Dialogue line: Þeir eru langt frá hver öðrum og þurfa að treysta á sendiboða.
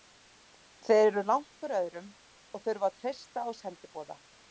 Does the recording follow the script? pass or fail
fail